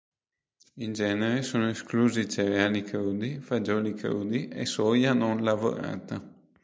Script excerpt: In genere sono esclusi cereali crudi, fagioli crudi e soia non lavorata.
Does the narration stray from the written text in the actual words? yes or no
no